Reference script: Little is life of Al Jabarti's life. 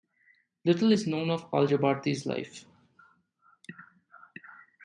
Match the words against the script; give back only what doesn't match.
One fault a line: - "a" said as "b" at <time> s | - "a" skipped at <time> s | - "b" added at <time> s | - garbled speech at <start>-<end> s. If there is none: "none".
- "life" said as "known" at 1.1 s